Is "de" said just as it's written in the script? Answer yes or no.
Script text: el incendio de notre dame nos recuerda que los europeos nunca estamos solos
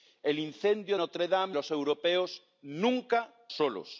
no